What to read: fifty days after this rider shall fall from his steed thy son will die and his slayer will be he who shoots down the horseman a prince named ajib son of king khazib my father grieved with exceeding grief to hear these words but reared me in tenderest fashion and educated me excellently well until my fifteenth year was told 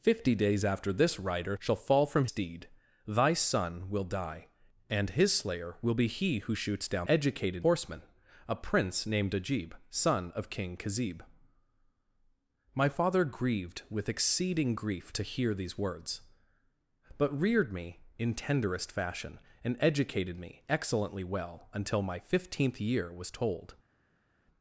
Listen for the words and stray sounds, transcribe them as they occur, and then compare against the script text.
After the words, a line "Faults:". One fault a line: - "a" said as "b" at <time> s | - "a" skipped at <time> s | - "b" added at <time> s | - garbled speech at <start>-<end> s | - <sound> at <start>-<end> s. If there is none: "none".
fifty days after this rider shall fall from steed thy son will die and his slayer will be he who shoots down educated horseman a prince named ajib son of king khazib my father grieved with exceeding grief to hear these words but reared me in tenderest fashion and educated me excellently well until my fifteenth year was told
Faults:
- "his" skipped at 2.2 s
- "the" said as "educated" at 7.1 s